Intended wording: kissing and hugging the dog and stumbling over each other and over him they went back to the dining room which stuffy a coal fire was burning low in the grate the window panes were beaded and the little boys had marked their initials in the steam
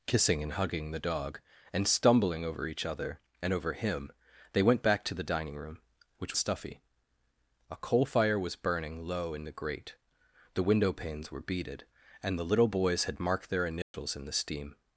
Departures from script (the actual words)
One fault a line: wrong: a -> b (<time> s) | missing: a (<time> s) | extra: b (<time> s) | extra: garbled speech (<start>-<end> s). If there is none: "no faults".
no faults